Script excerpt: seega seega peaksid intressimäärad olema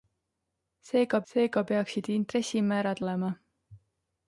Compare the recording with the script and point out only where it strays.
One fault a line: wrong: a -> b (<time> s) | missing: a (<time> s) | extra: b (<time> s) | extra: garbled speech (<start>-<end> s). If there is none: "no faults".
no faults